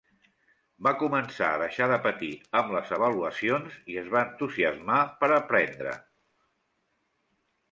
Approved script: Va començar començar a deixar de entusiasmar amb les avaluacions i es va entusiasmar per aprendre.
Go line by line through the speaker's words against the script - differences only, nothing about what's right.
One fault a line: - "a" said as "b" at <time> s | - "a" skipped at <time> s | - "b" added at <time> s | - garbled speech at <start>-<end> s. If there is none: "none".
- "començar" skipped at 1.5 s
- "entusiasmar" said as "patir" at 2.0 s